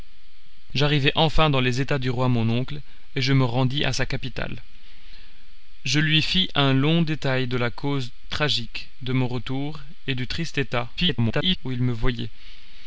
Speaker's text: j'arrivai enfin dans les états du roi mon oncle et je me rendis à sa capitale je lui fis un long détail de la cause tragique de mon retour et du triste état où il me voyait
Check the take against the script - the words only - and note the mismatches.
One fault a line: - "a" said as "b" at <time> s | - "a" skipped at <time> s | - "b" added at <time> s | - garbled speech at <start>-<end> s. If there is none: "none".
- garbled speech at 11.0-11.6 s